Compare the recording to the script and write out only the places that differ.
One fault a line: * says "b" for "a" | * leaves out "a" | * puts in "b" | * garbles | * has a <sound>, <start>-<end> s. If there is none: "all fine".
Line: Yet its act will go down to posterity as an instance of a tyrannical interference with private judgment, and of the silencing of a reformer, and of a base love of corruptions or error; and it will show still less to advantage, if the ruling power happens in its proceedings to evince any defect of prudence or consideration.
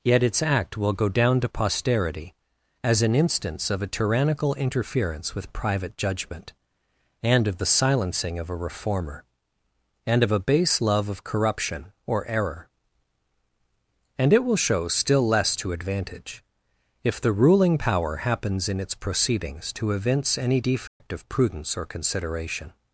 * says "corruption" for "corruptions"
* has a dropout, 20.9-21.0 s